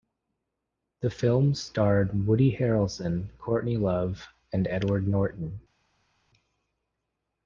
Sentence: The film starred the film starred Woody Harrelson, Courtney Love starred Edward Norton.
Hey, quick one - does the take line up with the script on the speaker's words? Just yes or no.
no